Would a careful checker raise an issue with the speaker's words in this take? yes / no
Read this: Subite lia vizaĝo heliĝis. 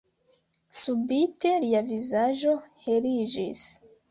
no